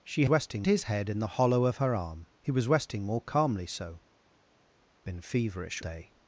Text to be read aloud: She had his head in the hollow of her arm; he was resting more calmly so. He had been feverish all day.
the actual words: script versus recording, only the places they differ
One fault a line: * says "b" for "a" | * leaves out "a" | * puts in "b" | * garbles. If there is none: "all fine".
* says "resting" for "had"
* leaves out "He had"
* leaves out "all"